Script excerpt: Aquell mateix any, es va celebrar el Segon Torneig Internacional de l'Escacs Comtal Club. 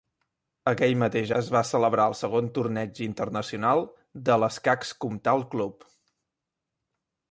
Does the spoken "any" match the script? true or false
false